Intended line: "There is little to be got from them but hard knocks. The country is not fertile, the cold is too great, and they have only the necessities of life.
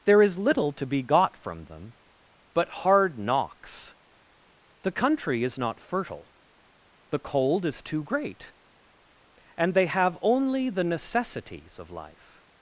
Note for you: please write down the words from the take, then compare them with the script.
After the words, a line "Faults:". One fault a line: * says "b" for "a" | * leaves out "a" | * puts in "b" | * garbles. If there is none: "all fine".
"There is little to be got from them but hard knocks. The country is not fertile, the cold is too great, and they have only the necessities of life.
Faults:
all fine